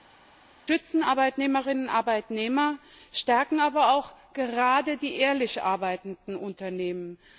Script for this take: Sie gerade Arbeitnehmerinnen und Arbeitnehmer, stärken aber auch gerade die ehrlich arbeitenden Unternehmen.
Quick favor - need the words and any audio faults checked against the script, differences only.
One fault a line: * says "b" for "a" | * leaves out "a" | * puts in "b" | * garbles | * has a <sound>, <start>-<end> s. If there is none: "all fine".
* says "schützen" for "gerade"